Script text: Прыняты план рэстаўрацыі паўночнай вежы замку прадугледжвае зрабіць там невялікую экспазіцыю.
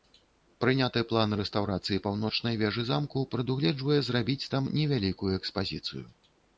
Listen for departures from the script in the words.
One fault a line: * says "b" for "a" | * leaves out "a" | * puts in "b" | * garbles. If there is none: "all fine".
all fine